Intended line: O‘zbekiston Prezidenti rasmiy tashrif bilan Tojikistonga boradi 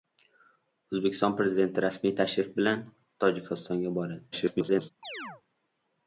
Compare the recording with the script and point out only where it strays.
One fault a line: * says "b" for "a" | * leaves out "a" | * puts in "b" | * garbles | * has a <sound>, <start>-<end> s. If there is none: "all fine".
* garbles
* has a chirp, 5.0-5.4 s